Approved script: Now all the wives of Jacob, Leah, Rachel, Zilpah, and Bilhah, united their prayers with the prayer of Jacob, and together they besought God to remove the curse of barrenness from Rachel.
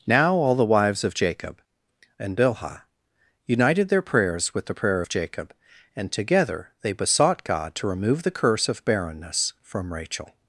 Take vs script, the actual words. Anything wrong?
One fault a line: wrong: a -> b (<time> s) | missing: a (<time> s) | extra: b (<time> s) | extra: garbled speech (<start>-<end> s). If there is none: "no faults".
missing: Leah Rachel Zilpah (1.6 s)